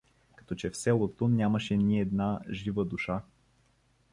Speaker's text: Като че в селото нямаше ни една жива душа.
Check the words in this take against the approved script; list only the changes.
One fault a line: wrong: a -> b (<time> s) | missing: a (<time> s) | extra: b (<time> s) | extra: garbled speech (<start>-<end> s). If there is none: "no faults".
no faults